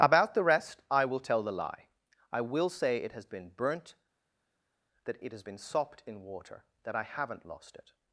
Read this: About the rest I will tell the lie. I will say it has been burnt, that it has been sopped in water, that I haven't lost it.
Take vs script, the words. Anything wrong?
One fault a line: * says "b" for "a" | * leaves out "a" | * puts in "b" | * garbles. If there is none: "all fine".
all fine